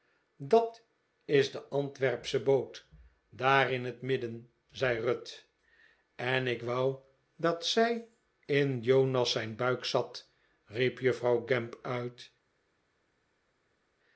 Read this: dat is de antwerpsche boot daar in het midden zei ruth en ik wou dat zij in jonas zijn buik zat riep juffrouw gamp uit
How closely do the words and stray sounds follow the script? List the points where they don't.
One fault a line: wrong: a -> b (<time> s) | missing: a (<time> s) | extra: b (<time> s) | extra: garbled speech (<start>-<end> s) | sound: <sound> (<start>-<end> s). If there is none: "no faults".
no faults